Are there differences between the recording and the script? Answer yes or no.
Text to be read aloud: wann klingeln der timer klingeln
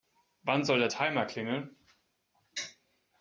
yes